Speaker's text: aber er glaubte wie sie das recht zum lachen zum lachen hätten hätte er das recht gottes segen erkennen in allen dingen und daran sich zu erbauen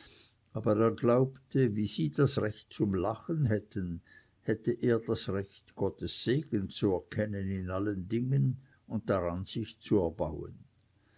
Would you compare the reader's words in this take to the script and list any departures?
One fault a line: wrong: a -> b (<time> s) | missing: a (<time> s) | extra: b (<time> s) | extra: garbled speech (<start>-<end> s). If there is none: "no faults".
missing: zum lachen (3.5 s)
extra: zu (6.7 s)